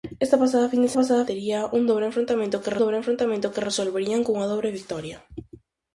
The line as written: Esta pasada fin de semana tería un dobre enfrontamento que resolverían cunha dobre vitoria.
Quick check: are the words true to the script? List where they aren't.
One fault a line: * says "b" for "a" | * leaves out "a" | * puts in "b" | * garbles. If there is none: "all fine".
* says "pasada" for "semana"
* puts in "dobre enfrontamento que"